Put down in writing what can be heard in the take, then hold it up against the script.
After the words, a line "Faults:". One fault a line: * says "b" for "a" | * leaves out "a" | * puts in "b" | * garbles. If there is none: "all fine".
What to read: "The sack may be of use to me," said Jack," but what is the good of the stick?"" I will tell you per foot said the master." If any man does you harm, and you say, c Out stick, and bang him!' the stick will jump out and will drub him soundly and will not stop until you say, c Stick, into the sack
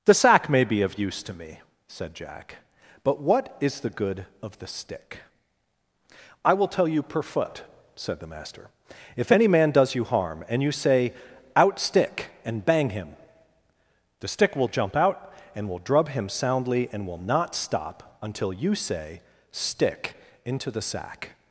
"The sack may be of use to me," said Jack," but what is the good of the stick?"" I will tell you per foot said the master." If any man does you harm, and you say, Out stick, and bang him!' the stick will jump out and will drub him soundly and will not stop until you say, Stick, into the sack
Faults:
* leaves out "c"
* leaves out "c"